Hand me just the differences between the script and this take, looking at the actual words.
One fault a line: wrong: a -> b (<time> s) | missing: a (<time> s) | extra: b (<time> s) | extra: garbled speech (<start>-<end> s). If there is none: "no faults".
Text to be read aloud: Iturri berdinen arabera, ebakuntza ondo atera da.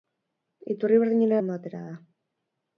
missing: arabera ebakuntza (1.4 s)